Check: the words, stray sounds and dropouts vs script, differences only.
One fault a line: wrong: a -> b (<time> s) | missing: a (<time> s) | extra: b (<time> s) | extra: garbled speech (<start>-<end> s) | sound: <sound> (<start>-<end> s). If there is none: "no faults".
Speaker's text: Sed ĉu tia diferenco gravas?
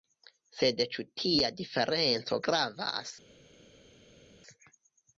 no faults